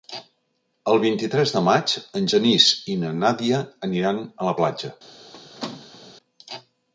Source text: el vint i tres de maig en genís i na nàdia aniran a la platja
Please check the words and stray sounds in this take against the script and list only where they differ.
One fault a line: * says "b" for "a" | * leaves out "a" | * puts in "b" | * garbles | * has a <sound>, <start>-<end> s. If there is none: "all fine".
* has a squeak, 5.3-6.1 s